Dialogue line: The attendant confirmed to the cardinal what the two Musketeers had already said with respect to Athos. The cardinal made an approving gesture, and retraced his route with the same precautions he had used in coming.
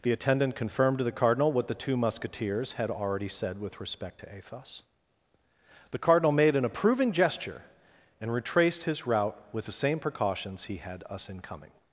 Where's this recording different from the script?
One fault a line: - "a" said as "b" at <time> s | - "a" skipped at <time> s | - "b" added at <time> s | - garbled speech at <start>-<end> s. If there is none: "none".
- "used" said as "us" at 11.1 s